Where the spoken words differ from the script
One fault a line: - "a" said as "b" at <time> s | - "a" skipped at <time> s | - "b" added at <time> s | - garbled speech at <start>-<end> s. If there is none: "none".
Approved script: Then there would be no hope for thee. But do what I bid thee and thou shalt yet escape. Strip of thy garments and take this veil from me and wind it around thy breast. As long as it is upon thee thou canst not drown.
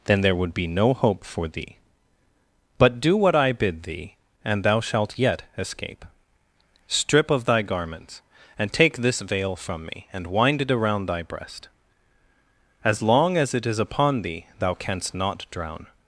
none